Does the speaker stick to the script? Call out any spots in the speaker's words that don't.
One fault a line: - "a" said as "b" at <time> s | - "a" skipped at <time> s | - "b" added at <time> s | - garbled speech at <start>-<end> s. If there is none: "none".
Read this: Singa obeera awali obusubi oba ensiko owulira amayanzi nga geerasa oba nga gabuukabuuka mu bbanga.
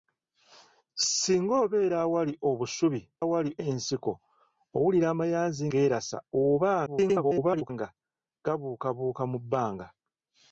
- "oba" said as "awali" at 3.2 s
- "nga" skipped at 5.6 s
- garbled speech at 6.9-7.7 s